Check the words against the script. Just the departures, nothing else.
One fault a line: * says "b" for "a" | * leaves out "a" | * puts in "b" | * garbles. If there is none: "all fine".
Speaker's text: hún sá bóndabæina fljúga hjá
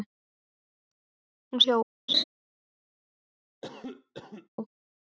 * leaves out "sá bóndabæina fljúga"